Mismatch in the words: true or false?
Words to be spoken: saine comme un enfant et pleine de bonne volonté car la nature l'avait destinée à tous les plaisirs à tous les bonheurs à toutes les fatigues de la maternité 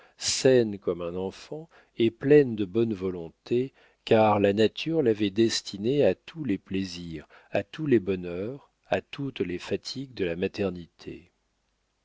false